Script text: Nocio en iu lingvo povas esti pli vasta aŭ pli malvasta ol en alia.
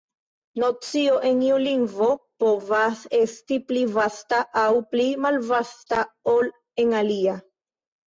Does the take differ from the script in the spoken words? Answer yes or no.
no